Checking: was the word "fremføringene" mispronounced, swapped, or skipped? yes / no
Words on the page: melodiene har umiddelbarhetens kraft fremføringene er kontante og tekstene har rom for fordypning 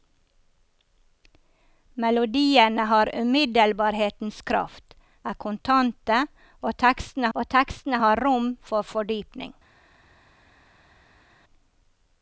yes